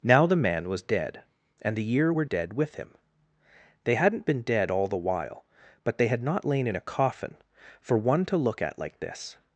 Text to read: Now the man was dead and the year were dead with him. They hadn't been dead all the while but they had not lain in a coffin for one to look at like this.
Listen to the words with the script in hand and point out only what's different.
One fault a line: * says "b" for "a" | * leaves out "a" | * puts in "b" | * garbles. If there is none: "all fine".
all fine